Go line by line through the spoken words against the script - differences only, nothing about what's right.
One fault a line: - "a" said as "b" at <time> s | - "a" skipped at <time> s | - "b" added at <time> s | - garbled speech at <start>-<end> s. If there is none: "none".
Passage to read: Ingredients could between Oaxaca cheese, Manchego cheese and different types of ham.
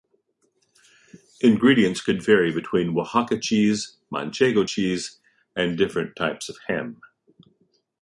- "vary" added at 2.2 s